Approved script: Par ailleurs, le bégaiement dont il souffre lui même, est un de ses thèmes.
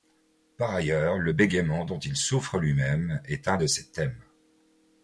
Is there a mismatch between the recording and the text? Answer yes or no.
no